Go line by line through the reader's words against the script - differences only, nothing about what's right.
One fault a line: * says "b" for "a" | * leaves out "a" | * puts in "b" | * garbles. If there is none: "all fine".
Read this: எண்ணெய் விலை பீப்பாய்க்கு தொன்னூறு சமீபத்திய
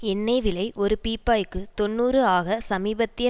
* puts in "ஒரு"
* puts in "ஆக"